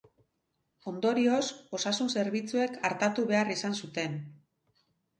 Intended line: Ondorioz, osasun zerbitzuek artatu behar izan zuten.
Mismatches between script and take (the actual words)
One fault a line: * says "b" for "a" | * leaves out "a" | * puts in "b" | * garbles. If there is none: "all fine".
all fine